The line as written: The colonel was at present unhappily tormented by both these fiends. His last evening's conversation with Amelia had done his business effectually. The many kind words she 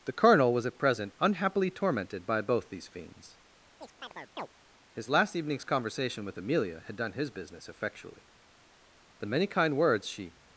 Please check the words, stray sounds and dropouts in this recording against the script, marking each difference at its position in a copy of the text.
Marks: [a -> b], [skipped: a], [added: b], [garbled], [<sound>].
The colonel was at present unhappily tormented by both these fiends. [chirp] His last evening's conversation with Amelia had done his business effectually. The many kind words she